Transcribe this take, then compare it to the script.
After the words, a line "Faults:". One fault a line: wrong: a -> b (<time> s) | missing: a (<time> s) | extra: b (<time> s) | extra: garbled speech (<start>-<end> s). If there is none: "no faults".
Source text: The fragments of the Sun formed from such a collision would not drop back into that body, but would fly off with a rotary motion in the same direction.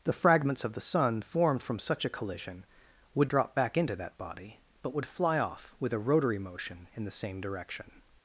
The fragments of the Sun formed from such a collision would drop back into that body, but would fly off with a rotary motion in the same direction.
Faults:
missing: not (3.3 s)